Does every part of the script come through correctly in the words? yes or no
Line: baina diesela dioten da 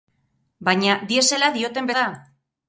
yes